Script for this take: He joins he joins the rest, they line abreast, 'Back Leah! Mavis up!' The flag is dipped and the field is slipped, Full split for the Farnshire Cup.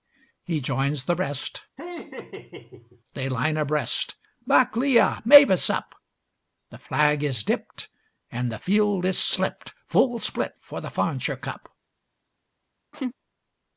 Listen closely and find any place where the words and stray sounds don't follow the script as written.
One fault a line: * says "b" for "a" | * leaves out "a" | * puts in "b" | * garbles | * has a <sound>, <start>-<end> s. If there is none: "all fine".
* leaves out "he joins"
* has a laugh, 1.8-3.0 s
* has a laugh, 12.9-13.1 s